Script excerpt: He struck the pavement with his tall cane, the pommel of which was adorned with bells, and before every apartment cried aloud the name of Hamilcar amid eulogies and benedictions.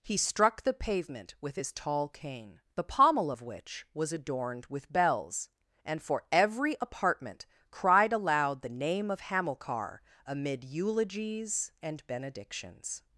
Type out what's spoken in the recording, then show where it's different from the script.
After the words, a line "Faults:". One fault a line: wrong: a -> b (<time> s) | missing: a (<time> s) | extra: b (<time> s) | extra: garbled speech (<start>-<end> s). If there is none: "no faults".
He struck the pavement with his tall cane, the pommel of which was adorned with bells, and for every apartment cried aloud the name of Hamilcar amid eulogies and benedictions.
Faults:
wrong: before -> for (6.0 s)